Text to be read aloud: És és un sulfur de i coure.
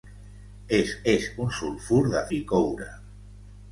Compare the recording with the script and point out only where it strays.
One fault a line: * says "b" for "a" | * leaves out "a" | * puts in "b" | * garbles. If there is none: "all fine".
all fine